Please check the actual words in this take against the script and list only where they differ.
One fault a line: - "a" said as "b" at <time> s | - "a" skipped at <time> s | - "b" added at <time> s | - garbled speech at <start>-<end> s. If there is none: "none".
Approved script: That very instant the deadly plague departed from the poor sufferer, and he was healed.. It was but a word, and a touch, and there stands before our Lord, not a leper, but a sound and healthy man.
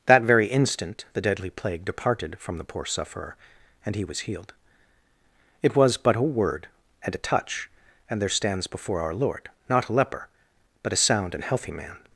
none